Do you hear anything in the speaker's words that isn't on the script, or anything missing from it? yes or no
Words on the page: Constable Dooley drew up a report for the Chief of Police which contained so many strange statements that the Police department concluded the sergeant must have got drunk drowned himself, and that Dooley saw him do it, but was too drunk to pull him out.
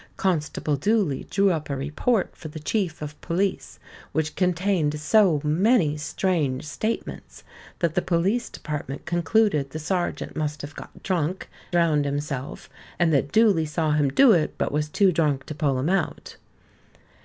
no